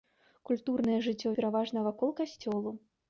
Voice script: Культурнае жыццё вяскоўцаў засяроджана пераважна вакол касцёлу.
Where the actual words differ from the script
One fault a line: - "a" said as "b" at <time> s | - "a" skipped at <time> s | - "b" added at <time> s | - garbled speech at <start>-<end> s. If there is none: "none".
- "вяскоўцаў засяроджана" skipped at 1.3 s